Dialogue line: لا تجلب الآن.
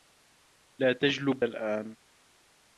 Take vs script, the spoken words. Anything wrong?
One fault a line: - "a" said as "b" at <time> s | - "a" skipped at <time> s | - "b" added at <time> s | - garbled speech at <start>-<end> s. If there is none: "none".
none